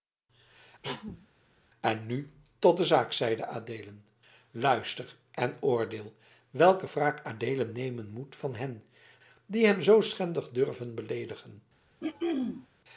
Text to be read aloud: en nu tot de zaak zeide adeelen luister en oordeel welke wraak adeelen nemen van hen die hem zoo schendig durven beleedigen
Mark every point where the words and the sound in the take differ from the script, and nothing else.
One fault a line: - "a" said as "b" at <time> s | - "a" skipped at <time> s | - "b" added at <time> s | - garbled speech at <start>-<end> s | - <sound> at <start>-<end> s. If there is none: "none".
- cough at 0.8-1.3 s
- "moet" added at 8.1 s
- throat clearing at 12.0-12.7 s